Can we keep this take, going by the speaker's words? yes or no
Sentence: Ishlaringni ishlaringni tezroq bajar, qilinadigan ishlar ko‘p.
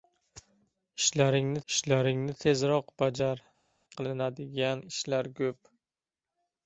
yes